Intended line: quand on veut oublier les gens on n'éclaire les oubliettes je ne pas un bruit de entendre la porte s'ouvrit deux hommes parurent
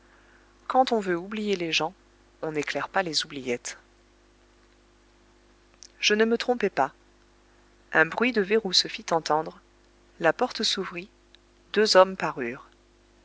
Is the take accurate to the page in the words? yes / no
no